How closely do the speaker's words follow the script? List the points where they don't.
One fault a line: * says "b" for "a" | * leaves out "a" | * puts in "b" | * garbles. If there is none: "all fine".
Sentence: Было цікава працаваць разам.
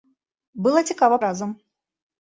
* leaves out "працаваць"